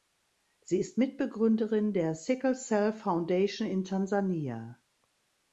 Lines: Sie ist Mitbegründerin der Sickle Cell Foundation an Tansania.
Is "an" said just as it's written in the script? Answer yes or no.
no